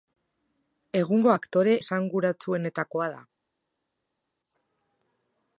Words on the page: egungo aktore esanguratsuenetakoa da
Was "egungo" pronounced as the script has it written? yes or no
yes